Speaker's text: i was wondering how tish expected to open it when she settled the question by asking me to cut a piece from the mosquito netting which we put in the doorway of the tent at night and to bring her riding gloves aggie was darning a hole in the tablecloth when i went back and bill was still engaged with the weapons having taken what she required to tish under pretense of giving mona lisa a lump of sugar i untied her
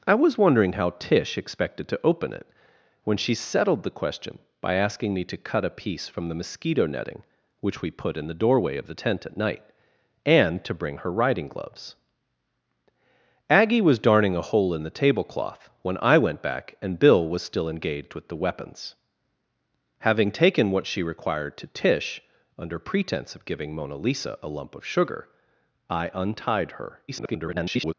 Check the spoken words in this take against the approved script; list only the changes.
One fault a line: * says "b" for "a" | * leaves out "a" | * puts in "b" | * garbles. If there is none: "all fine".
* garbles